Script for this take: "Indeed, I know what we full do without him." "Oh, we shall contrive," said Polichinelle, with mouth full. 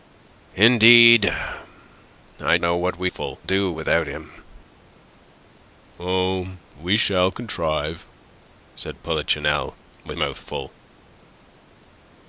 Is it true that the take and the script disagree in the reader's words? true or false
false